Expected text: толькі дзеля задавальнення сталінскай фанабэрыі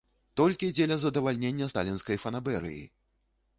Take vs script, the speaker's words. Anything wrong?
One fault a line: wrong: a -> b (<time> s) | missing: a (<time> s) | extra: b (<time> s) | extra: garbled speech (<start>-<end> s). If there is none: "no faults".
no faults